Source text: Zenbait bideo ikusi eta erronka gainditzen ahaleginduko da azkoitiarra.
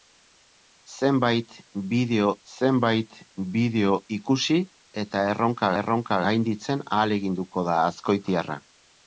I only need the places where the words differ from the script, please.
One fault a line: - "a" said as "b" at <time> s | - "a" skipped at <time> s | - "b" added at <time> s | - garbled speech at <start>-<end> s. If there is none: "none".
- "zenbait bideo" added at 2.5 s
- "erronka" added at 5.8 s